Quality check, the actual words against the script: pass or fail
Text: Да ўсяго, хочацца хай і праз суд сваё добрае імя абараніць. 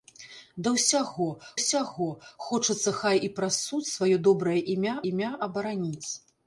fail